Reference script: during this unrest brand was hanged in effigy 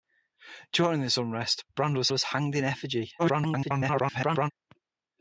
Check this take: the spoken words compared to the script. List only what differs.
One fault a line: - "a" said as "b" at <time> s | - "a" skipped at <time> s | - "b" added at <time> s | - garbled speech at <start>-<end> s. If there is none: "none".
- "was" added at 2.1 s
- garbled speech at 3.2-4.5 s